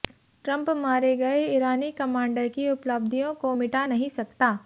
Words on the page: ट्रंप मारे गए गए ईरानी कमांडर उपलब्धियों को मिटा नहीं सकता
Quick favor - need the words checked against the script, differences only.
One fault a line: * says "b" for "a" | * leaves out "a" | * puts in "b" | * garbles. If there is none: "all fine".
* leaves out "गए"
* puts in "की"